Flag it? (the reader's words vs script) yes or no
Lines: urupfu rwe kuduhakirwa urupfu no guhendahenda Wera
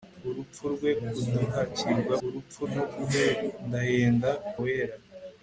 no